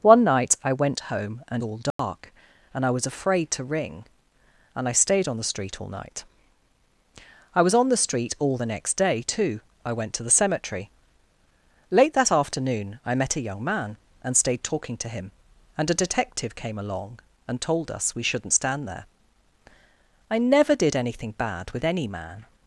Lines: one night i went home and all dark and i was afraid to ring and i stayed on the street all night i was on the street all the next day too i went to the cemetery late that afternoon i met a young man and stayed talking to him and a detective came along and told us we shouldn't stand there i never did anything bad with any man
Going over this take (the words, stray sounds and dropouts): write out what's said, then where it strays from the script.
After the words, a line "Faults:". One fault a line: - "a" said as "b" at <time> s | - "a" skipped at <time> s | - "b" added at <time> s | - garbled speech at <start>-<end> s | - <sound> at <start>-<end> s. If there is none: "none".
one night i went home and all dark and i was afraid to ring and i stayed on the street all night i was on the street all the next day too i went to the cemetery late that afternoon i met a young man and stayed talking to him and a detective came along and told us we shouldn't stand there i never did anything bad with any man
Faults:
- dropout at 1.9-2.0 s